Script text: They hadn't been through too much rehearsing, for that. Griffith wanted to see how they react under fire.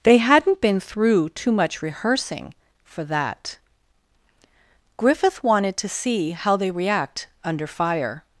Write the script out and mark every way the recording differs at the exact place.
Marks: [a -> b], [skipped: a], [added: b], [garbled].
They hadn't been through too much rehearsing, for that. Griffith wanted to see how they react under fire.